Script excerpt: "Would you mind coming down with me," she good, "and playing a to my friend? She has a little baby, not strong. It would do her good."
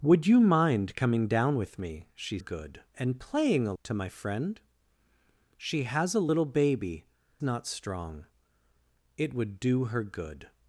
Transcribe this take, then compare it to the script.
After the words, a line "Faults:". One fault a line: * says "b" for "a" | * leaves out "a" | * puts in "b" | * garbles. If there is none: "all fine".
"Would you mind coming down with me," she good, "and playing a to my friend? She has a little baby, not strong. It would do her good."
Faults:
all fine